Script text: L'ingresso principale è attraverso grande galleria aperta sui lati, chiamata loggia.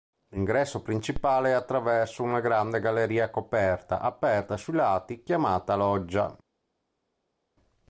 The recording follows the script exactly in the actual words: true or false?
false